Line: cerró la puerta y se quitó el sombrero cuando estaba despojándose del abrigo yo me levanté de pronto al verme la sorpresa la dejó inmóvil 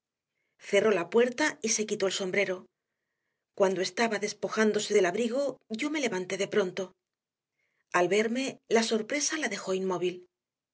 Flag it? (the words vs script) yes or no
no